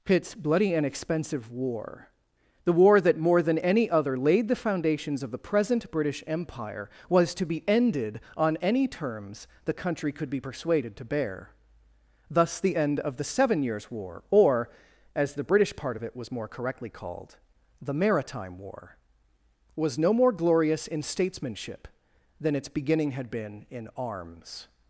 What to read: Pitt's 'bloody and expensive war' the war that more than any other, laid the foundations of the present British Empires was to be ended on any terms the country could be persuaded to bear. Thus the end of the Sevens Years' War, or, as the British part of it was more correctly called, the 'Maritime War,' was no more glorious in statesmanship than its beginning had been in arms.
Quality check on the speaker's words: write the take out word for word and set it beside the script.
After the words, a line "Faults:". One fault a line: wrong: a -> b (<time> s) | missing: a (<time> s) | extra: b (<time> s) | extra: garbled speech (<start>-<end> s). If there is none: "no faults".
Pitt's 'bloody and expensive war' the war that more than any other, laid the foundations of the present British Empire was to be ended on any terms the country could be persuaded to bear. Thus the end of the Seven Years' War, or, as the British part of it was more correctly called, the 'Maritime War,' was no more glorious in statesmanship than its beginning had been in arms.
Faults:
wrong: Empires -> Empire (6.3 s)
wrong: Sevens -> Seven (13.2 s)